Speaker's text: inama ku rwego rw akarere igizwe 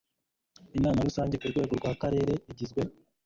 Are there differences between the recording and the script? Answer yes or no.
yes